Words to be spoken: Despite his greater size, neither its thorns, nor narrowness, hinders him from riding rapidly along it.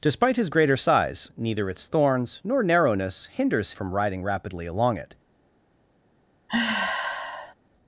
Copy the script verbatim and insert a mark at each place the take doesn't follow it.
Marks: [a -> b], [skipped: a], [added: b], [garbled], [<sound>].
Despite his greater size, neither its thorns, nor narrowness, hinders [skipped: him] from riding rapidly along it. [sigh]